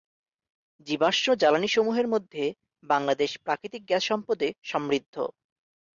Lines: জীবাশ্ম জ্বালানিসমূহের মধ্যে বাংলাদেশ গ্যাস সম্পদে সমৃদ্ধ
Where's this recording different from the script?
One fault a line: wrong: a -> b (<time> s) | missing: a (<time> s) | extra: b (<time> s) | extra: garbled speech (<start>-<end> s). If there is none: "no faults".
extra: প্রাকৃতিক (3.4 s)